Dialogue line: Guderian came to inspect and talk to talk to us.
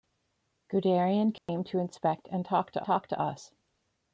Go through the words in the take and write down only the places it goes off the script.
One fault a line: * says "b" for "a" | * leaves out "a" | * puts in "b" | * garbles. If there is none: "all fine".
all fine